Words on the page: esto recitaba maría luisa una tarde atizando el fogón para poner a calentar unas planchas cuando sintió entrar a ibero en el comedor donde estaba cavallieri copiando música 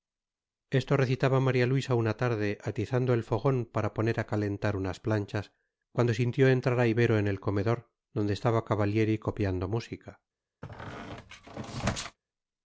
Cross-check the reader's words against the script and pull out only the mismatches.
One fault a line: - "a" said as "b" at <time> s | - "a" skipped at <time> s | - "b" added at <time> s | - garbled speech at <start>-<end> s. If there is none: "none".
none